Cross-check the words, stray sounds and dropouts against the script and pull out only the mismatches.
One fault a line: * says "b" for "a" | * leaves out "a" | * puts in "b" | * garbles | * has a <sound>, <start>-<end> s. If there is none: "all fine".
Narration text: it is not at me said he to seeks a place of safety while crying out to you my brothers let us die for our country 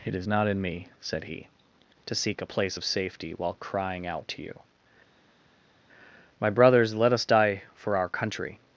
* says "in" for "at"
* says "seek" for "seeks"